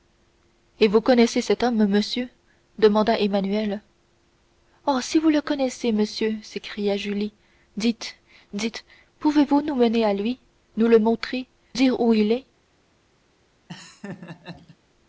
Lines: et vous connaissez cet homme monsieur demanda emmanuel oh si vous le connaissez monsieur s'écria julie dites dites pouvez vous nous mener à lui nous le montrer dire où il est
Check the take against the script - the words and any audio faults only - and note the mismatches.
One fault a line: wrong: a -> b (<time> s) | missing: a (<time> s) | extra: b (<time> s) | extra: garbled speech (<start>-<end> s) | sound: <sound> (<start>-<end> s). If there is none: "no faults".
sound: laugh (13.7-14.8 s)